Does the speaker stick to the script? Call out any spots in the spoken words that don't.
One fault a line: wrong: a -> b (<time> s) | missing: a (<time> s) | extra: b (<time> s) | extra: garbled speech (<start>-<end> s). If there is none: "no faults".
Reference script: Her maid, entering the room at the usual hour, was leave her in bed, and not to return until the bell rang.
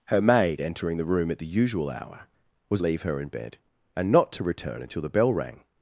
no faults